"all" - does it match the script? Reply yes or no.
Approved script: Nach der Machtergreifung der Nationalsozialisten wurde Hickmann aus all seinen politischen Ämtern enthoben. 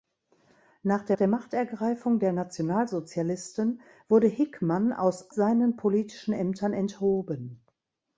no